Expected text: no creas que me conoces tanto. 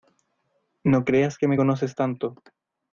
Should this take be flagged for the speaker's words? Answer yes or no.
no